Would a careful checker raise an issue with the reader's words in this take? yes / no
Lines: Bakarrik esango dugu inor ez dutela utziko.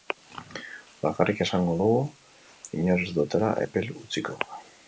yes